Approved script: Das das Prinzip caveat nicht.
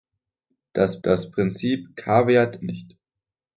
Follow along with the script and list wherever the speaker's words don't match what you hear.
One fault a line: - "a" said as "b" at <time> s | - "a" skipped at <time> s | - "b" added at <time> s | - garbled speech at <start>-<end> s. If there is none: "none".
none